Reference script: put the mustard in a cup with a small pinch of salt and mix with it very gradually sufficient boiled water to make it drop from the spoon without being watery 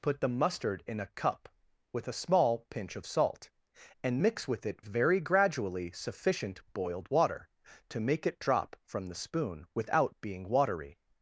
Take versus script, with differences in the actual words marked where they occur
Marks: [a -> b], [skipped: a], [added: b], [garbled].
put the mustard in a cup with a small pinch of salt and mix with it very gradually sufficient boiled water to make it drop from the spoon without being watery